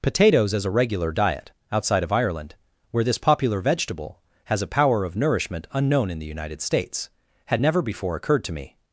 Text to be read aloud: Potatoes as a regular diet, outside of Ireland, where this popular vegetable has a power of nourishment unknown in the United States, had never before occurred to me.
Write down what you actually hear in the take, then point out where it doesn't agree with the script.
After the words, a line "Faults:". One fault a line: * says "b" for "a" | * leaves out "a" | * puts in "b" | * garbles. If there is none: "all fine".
Potatoes as a regular diet, outside of Ireland, where this popular vegetable has a power of nourishment unknown in the United States, had never before occurred to me.
Faults:
all fine